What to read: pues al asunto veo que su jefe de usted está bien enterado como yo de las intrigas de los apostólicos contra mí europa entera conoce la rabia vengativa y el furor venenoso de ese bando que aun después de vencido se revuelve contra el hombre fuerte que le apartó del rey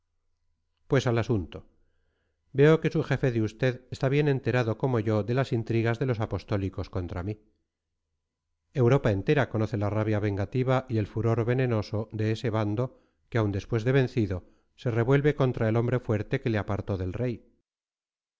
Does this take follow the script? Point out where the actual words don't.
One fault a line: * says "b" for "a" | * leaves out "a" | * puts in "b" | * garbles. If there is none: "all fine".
all fine